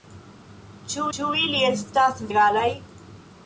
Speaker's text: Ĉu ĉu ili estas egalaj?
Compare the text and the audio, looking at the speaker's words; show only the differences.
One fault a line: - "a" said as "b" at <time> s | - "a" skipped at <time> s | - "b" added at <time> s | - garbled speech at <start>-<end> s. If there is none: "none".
none